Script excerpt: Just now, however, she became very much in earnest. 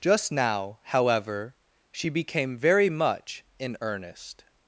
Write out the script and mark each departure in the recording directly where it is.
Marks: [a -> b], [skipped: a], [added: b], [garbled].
Just now, however, she became very much in earnest.